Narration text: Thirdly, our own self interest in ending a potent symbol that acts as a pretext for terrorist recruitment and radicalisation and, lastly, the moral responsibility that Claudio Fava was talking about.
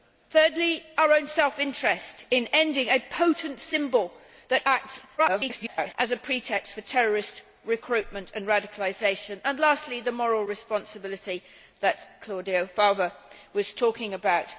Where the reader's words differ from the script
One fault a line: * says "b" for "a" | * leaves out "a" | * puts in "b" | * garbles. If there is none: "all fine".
* garbles